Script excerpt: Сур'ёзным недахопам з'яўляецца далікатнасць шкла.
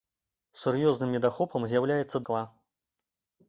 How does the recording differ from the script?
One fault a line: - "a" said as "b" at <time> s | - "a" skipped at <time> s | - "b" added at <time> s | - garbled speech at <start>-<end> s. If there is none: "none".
- "далікатнасць" skipped at 2.2 s